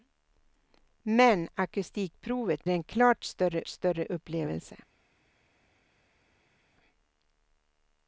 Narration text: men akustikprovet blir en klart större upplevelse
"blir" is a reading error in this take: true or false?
true